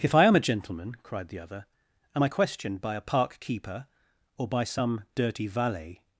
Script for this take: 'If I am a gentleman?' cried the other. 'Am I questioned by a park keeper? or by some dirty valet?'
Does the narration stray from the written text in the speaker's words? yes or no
no